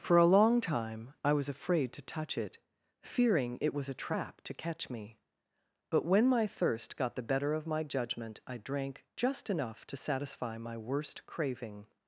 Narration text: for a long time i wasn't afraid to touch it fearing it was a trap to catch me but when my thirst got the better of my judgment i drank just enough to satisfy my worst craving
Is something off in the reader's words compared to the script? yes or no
yes